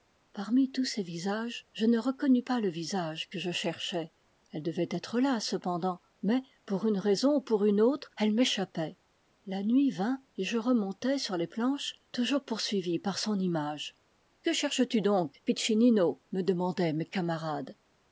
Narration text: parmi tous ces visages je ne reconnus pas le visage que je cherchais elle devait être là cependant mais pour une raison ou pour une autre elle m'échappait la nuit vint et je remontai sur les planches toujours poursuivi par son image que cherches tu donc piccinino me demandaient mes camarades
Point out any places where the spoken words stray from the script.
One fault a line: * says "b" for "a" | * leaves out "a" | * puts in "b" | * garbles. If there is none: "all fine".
all fine